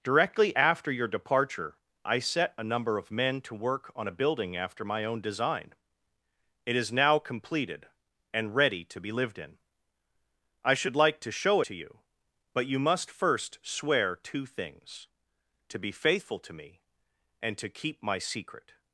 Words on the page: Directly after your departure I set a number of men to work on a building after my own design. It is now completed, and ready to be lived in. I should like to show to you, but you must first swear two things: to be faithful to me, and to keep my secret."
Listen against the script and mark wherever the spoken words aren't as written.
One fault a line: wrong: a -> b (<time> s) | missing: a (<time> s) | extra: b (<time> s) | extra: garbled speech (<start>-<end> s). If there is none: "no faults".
no faults